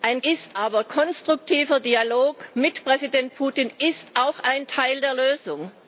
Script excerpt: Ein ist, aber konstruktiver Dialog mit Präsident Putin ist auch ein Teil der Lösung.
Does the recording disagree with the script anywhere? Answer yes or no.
no